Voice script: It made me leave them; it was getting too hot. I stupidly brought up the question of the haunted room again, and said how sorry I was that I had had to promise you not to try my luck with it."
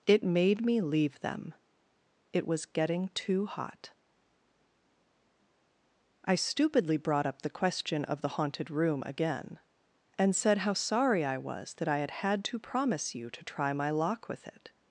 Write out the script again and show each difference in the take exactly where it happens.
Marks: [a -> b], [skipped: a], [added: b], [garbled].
It made me leave them; it was getting too hot. I stupidly brought up the question of the haunted room again, and said how sorry I was that I had had to promise you [skipped: not] to try my [luck -> lock] with it."